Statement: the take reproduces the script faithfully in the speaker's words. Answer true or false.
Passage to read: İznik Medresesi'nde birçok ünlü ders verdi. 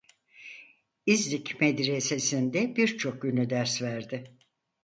true